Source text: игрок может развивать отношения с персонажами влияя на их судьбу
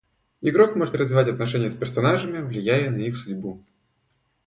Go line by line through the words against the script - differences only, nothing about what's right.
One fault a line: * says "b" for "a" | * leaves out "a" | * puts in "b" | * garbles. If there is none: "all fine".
all fine